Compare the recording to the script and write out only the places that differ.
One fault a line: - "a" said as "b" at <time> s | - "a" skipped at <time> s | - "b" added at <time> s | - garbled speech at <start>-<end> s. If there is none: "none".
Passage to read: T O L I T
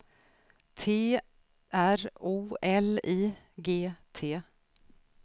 - "R" added at 1.7 s
- "G" added at 3.6 s